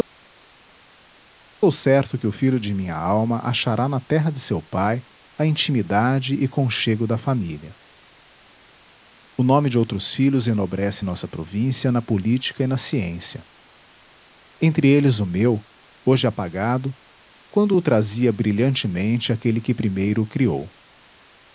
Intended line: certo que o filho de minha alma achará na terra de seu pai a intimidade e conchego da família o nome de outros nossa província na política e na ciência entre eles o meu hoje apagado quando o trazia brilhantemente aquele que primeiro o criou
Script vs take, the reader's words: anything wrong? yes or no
yes